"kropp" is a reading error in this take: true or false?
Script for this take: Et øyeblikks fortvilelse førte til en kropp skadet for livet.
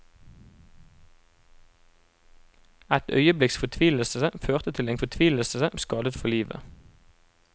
true